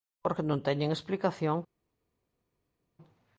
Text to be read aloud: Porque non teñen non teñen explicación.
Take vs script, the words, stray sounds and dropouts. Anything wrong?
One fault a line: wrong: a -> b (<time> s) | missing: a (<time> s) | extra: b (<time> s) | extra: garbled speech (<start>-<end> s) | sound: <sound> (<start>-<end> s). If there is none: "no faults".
missing: non teñen (0.9 s)